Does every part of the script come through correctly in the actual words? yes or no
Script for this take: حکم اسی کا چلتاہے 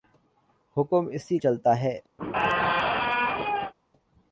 no